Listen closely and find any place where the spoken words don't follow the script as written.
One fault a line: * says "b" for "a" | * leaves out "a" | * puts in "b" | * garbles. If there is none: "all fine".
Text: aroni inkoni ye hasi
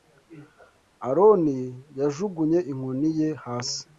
* puts in "yajugunye"